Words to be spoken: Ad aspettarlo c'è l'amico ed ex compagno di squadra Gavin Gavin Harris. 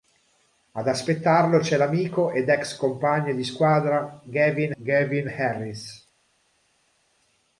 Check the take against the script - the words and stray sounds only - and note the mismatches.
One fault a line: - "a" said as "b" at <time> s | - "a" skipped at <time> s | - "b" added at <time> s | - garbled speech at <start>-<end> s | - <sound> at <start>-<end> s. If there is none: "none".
none